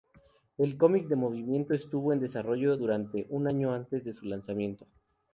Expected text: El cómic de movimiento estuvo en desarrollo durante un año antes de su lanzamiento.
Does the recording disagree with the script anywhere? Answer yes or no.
no